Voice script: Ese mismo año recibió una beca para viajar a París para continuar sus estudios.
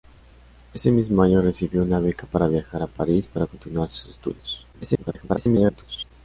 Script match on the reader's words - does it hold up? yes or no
no